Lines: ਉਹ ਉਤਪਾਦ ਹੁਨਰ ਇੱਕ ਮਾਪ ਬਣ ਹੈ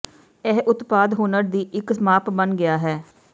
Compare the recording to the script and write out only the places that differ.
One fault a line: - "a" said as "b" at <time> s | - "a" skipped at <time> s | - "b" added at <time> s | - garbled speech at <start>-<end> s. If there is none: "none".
- "ਉਹ" said as "ਇਹ" at 0.5 s
- "ਦੀ" added at 1.5 s
- "ਗਿਆ" added at 2.6 s